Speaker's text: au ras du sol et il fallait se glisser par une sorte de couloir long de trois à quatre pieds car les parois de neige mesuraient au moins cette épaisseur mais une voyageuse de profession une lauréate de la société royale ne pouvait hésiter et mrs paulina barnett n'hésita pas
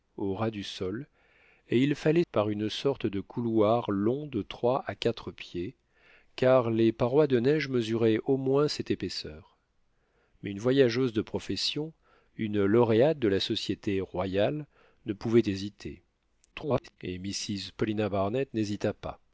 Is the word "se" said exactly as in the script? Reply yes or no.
no